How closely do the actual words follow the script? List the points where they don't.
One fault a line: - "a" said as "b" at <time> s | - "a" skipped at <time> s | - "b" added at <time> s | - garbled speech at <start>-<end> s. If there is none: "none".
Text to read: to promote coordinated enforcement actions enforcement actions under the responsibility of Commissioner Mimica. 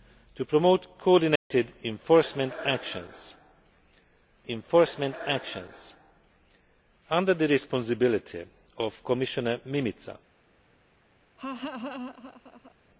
none